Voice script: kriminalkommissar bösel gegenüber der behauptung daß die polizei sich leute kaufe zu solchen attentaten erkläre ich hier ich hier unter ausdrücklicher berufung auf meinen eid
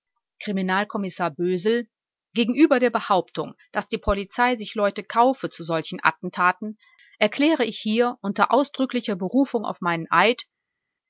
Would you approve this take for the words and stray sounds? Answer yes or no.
no